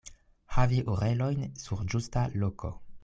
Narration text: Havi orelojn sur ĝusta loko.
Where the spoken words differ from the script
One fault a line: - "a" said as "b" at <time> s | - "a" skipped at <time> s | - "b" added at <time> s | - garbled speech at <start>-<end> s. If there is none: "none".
none